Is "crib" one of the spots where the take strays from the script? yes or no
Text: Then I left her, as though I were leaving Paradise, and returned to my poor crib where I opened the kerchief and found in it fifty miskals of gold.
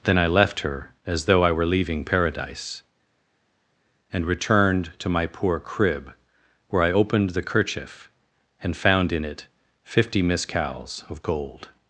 no